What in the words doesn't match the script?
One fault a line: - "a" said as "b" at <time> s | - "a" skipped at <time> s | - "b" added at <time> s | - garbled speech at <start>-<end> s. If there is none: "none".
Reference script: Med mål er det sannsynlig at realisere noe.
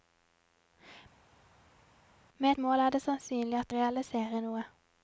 none